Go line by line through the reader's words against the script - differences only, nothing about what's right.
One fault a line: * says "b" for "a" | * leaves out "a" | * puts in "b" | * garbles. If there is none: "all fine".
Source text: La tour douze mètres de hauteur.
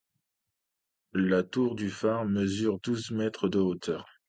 * puts in "du phare mesure"